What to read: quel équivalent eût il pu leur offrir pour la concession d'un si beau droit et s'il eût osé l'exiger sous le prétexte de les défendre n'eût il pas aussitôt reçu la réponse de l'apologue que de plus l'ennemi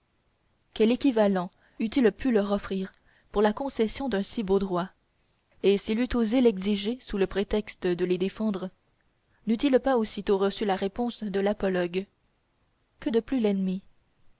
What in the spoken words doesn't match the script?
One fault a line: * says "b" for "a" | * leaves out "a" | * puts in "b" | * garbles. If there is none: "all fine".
all fine